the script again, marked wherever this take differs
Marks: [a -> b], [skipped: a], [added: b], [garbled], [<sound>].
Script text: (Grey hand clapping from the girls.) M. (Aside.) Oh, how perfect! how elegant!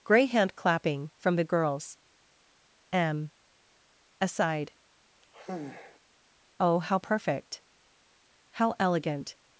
(Grey hand clapping from the girls.) M. (Aside.) [sigh] Oh, how perfect! how elegant!